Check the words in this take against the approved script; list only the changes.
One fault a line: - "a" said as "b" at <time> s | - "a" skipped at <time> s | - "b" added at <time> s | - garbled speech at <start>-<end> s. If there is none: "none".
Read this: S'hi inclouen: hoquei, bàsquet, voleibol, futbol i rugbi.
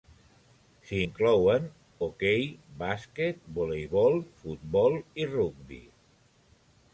none